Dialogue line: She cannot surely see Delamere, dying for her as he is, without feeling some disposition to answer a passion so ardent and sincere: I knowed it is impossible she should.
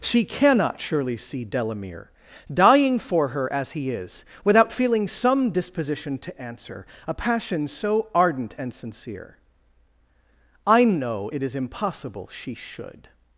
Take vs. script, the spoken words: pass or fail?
fail